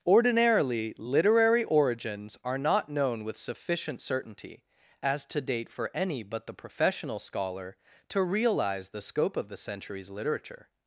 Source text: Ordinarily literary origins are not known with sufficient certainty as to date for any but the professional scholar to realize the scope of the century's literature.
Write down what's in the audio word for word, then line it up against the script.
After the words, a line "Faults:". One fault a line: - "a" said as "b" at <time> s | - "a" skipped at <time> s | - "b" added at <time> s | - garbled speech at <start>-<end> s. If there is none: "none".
Ordinarily literary origins are not known with sufficient certainty as to date for any but the professional scholar to realize the scope of the century's literature.
Faults:
none